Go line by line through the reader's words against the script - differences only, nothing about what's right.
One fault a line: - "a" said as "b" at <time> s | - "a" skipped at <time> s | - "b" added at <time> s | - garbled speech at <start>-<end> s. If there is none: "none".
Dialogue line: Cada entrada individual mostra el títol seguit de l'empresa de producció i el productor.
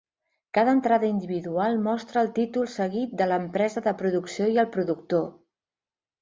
none